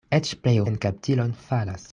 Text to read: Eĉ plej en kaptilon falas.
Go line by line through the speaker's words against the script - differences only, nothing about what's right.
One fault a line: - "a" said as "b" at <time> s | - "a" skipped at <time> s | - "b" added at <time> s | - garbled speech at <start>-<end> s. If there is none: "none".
none